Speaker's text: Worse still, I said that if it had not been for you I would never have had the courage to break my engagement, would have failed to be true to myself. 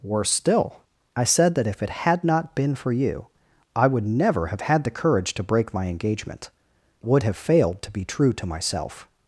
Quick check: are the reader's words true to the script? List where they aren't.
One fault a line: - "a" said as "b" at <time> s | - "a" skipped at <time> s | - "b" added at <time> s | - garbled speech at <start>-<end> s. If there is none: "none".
none